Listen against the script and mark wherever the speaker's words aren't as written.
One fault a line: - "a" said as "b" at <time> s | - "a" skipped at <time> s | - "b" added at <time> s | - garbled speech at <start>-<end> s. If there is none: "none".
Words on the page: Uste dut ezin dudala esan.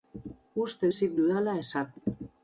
- "dut" skipped at 0.9 s